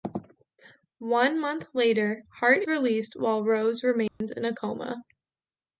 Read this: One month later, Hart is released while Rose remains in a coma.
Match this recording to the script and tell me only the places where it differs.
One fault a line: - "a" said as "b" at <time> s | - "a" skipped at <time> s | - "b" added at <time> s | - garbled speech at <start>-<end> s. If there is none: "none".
- "is" skipped at 2.6 s